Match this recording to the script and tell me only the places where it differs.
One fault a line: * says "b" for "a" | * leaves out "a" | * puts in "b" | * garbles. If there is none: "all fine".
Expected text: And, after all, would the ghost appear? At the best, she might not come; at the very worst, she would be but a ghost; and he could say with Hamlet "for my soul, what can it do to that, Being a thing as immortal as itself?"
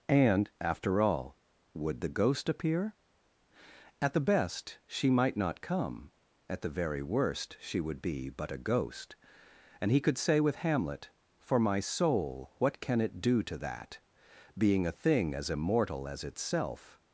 all fine